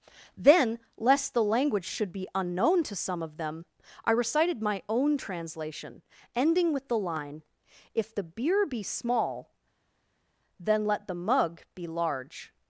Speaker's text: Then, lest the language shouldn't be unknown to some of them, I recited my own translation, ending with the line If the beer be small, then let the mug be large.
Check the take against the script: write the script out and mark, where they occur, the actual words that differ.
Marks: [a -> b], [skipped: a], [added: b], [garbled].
Then, lest the language [shouldn't -> should] be unknown to some of them, I recited my own translation, ending with the line If the beer be small, then let the mug be large.